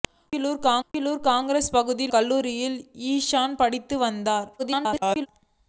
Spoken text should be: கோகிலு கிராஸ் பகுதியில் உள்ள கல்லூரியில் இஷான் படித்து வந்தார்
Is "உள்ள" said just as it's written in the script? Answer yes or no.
no